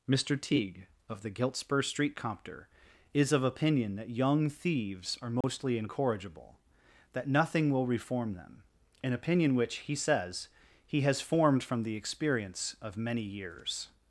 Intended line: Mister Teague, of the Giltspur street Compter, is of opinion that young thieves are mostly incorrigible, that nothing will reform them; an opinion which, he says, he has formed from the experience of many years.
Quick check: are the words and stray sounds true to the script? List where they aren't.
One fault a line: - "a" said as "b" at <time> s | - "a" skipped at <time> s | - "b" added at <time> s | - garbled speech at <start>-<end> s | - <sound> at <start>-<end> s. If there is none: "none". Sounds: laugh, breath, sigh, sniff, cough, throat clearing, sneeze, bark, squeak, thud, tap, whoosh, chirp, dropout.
- dropout at 5.4-5.4 s